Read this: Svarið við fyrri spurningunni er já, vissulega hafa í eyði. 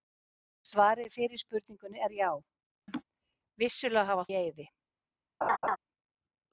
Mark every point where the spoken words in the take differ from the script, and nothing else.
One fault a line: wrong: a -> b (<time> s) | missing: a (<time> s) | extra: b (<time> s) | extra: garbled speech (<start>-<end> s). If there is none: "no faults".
no faults